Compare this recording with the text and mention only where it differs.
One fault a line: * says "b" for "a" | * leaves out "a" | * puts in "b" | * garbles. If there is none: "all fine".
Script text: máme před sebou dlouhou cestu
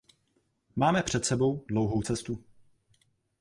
all fine